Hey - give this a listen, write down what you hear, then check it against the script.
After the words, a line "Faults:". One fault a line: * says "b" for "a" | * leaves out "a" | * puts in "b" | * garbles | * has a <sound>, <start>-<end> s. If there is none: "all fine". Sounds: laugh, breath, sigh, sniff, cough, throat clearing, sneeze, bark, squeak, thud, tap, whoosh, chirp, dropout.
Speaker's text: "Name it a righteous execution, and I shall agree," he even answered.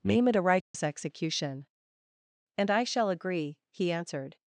"Name it a righteous execution, and I shall agree," he answered.
Faults:
* has a dropout, 0.6-0.7 s
* leaves out "even"